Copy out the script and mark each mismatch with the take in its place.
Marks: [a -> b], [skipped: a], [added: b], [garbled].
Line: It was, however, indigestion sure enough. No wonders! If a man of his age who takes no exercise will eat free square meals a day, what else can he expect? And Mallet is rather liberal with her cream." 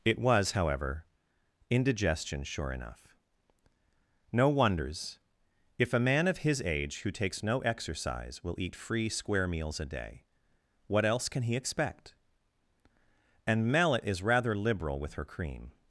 It was, however, indigestion sure enough. No wonders! If a man of his age who takes no exercise will eat free square meals a day, what else can he expect? And Mallet is rather liberal with her cream."